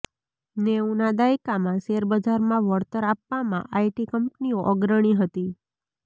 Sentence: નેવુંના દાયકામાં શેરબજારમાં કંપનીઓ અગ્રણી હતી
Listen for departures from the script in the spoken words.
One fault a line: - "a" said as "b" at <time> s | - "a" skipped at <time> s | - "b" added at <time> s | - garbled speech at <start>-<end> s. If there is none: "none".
- "વળતર આપવામાં આઇટી" added at 2.7 s